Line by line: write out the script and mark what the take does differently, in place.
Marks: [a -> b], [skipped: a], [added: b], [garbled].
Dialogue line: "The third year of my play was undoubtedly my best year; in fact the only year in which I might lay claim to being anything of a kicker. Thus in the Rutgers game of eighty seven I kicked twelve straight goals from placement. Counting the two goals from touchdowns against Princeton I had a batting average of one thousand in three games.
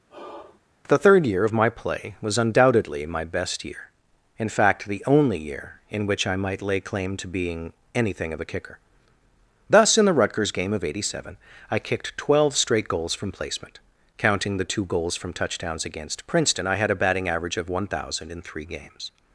"The third year of my play was undoubtedly my best year; in fact the only year in which I might lay claim to being anything of a kicker. Thus in the Rutgers game of eighty seven I kicked twelve straight goals from placement. Counting the two goals from touchdowns against Princeton I had a batting average of one thousand in three games.